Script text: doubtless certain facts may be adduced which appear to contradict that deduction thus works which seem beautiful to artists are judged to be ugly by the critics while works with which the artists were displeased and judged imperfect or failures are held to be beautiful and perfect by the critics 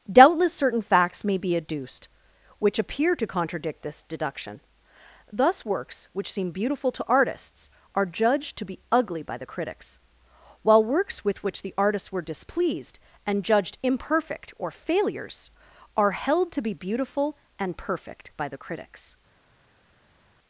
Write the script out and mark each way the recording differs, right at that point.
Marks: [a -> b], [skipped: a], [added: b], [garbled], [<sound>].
doubtless certain facts may be adduced which appear to contradict [that -> this] deduction thus works which seem beautiful to artists are judged to be ugly by the critics while works with which the artists were displeased and judged imperfect or failures are held to be beautiful and perfect by the critics